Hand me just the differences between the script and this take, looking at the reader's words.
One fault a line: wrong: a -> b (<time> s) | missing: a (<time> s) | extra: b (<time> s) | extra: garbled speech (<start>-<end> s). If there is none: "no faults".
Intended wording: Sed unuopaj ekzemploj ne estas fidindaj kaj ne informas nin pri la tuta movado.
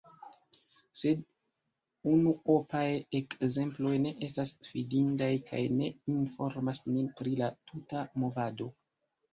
no faults